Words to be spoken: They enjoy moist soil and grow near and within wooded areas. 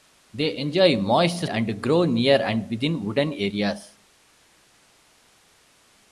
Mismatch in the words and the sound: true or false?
true